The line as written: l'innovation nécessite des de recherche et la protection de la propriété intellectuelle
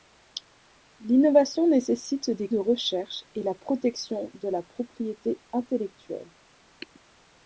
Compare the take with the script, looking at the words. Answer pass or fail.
pass